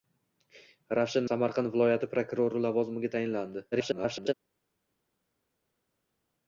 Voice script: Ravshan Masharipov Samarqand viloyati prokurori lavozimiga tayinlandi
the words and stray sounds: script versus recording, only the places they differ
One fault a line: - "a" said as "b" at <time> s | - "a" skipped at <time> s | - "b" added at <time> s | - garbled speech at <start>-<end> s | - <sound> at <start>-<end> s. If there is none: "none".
- "Masharipov" skipped at 1.3 s
- garbled speech at 3.7-4.3 s